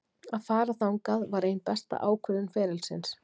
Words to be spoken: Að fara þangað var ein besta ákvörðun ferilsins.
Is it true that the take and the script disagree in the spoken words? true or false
false